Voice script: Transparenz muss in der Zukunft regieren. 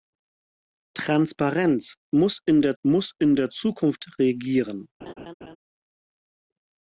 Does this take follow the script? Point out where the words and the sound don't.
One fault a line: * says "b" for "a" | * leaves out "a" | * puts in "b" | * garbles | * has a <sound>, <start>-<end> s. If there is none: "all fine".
* puts in "muss in der"
* has a laugh, 5.0-5.6 s